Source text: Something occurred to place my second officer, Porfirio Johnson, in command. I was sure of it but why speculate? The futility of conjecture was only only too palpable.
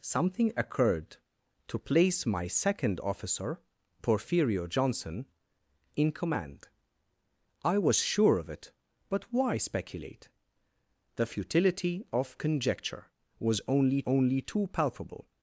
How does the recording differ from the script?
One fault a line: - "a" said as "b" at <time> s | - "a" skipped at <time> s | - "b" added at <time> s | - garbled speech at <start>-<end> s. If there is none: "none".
none